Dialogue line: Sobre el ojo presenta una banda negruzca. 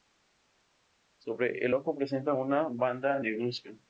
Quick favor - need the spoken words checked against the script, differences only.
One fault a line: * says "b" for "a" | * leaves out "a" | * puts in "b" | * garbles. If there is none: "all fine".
all fine